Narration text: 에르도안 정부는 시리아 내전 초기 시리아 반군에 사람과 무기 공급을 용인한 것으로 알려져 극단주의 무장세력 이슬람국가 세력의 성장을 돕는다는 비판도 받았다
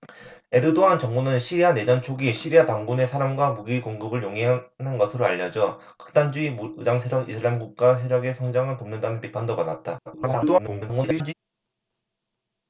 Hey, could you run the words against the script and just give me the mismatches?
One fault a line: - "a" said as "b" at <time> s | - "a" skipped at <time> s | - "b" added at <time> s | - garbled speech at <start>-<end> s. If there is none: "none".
- garbled speech at 10.1-11.3 s